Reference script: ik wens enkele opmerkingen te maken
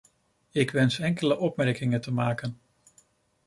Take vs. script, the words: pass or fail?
pass